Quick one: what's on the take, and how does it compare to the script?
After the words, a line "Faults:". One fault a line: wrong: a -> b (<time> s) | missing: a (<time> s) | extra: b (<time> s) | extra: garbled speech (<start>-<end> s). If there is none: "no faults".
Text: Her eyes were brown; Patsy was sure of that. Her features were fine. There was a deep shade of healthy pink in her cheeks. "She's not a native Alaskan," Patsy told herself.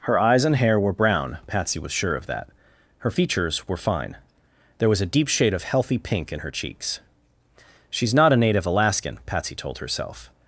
Her eyes and hair were brown; Patsy was sure of that. Her features were fine. There was a deep shade of healthy pink in her cheeks. "She's not a native Alaskan," Patsy told herself.
Faults:
extra: and hair (0.5 s)